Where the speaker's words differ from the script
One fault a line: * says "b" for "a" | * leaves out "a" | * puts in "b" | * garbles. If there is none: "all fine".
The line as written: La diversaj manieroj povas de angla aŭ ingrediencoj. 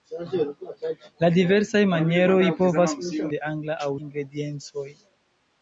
all fine